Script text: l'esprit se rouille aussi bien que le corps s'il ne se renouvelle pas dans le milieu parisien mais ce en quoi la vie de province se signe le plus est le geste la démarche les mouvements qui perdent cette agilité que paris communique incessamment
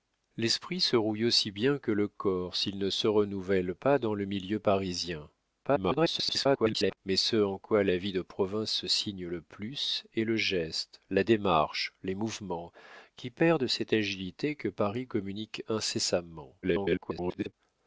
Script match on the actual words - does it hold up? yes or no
no